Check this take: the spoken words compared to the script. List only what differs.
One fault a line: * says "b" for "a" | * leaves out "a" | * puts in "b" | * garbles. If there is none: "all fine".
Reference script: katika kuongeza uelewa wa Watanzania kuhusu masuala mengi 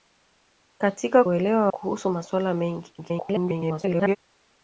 * leaves out "kuongeza"
* leaves out "Watanzania"
* garbles